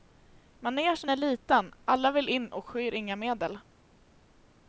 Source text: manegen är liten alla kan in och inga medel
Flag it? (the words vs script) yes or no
yes